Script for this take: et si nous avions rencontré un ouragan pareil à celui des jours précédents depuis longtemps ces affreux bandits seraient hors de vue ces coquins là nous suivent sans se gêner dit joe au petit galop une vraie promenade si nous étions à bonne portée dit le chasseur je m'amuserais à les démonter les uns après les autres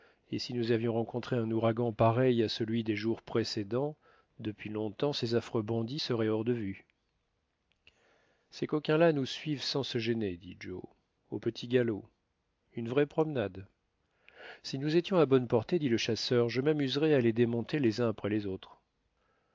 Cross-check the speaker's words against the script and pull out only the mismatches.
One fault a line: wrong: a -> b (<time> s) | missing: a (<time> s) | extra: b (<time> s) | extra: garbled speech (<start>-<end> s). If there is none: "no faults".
no faults